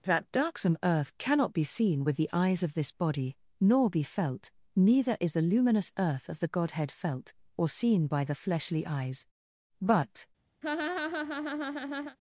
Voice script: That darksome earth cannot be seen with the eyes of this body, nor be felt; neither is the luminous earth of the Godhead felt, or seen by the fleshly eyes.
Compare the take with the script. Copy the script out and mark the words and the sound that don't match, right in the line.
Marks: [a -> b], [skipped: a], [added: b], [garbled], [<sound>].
That darksome earth cannot be seen with the eyes of this body, nor be felt; neither is the luminous earth of the Godhead felt, or seen by the fleshly eyes. [added: But] [laugh]